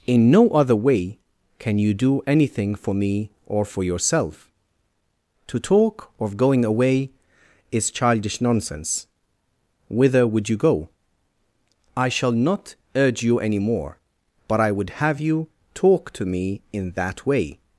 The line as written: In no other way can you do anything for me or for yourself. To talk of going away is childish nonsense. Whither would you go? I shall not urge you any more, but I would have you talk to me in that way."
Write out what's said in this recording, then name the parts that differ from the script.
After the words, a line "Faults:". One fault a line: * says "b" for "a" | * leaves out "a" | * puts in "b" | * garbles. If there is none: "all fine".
In no other way can you do anything for me or for yourself. To talk of going away is childish nonsense. Whither would you go? I shall not urge you any more, but I would have you talk to me in that way."
Faults:
all fine